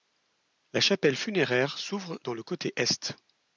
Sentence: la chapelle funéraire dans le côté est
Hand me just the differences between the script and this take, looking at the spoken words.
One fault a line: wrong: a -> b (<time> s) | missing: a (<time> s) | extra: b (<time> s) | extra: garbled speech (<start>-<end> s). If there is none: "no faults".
extra: s'ouvre (1.8 s)